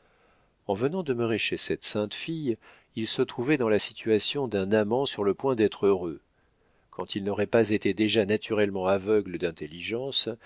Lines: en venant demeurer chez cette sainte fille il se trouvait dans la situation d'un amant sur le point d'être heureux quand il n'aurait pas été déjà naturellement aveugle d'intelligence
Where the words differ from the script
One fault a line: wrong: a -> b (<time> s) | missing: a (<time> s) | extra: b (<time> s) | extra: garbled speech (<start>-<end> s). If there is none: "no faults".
no faults